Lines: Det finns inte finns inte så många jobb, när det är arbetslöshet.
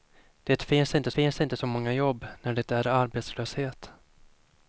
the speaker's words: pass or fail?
pass